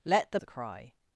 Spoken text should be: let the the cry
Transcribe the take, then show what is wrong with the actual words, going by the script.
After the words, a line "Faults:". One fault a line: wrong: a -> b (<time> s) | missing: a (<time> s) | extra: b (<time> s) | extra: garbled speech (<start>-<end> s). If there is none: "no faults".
let the the cry
Faults:
no faults